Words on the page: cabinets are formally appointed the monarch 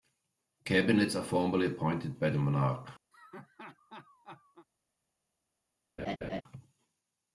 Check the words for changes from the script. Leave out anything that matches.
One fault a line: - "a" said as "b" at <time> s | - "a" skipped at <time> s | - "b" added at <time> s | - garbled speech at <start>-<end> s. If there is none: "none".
- "by" added at 2.2 s